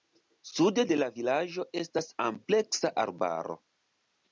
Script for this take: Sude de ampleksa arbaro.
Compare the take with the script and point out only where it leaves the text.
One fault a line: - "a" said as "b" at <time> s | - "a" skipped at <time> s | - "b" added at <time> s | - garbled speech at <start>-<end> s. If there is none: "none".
- "la vilaĝo estas" added at 1.0 s